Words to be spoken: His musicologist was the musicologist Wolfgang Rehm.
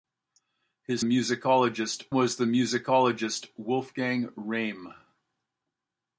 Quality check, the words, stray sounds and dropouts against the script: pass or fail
pass